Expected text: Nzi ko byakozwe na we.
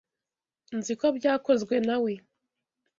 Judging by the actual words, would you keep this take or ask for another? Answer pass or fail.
pass